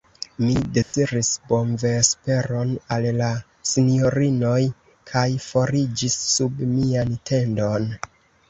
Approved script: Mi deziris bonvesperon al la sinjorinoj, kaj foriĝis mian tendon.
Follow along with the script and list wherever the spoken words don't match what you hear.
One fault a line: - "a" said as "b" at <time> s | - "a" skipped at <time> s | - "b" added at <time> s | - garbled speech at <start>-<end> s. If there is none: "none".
- "sub" added at 6.3 s